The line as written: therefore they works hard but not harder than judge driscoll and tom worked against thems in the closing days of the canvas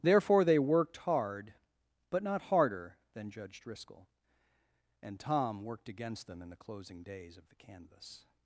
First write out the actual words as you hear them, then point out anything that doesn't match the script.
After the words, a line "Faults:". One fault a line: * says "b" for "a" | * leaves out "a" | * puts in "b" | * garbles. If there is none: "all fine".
therefore they worked hard but not harder than judge driscoll and tom worked against them in the closing days of the canvas
Faults:
* says "worked" for "works"
* says "them" for "thems"